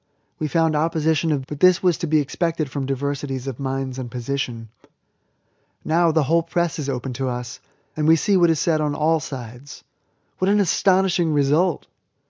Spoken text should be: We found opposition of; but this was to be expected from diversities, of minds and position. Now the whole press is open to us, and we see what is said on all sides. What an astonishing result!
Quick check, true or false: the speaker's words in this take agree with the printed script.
true